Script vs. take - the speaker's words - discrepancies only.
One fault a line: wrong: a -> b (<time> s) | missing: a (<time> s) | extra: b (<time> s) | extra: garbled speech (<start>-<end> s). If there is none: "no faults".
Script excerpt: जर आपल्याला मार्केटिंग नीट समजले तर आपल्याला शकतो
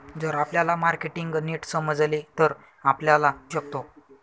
no faults